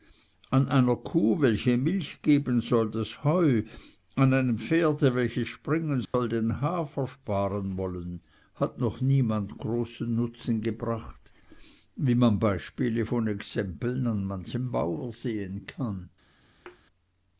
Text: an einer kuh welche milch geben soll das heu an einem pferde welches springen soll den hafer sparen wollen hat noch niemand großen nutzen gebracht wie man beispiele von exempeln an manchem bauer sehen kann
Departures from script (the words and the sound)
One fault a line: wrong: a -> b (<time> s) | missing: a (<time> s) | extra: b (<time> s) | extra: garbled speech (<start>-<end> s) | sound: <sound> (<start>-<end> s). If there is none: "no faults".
sound: dropout (6.0-6.1 s)
sound: thud (16.7-16.8 s)